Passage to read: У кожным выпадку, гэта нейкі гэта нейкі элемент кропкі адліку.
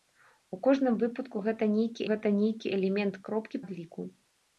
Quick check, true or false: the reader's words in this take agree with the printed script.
true